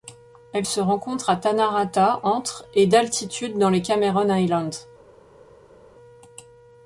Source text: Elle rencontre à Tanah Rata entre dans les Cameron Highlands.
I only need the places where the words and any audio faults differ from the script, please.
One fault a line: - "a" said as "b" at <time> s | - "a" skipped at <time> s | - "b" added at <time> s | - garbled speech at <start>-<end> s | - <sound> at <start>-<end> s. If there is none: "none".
- "se" added at 0.6 s
- "et d'altitude" added at 2.7 s